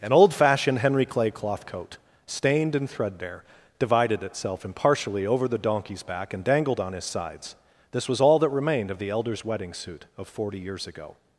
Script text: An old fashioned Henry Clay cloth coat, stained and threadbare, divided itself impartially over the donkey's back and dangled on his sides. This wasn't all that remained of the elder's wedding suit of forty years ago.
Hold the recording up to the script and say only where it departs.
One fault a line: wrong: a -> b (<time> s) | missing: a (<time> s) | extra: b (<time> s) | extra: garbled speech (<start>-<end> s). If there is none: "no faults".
wrong: wasn't -> was (8.1 s)